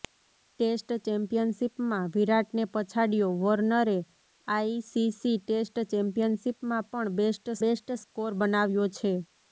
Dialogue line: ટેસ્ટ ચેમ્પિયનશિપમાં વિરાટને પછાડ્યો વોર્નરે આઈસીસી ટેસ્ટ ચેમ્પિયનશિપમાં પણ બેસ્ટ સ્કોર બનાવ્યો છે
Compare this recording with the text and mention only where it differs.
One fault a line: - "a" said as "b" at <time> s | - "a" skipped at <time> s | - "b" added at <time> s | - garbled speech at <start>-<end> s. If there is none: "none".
- "બેસ્ટ" added at 7.6 s